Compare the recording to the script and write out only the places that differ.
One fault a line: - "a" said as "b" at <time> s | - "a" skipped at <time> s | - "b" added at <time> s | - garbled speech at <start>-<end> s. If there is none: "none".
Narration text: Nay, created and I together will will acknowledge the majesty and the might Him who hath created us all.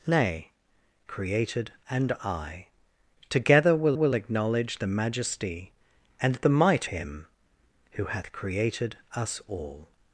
none